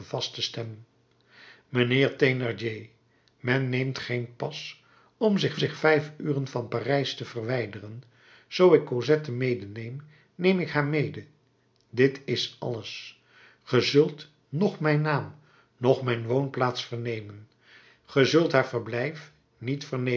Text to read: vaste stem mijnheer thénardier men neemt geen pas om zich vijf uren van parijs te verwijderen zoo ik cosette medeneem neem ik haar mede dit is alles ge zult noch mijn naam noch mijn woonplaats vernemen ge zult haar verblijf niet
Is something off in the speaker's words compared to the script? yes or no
yes